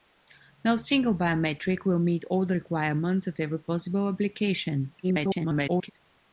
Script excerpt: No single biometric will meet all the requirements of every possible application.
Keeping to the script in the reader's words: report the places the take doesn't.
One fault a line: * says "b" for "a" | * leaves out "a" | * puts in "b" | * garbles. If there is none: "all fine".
* garbles